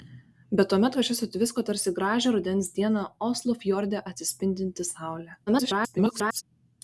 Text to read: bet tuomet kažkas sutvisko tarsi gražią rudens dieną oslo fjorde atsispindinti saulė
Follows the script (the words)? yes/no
no